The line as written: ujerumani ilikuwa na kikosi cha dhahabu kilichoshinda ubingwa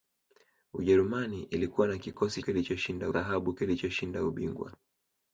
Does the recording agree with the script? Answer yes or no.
no